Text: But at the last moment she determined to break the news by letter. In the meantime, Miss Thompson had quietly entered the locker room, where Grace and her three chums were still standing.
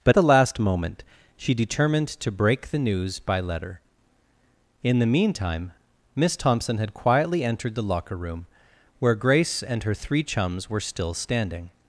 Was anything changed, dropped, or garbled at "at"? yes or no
yes